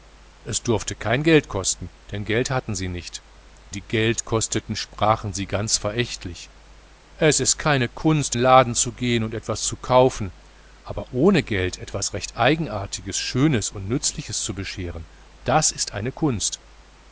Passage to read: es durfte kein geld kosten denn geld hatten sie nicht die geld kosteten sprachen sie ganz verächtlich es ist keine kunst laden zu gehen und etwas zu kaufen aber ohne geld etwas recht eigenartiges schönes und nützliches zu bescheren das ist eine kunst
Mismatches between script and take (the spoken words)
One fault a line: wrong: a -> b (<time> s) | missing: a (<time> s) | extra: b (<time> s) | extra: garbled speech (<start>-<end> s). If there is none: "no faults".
no faults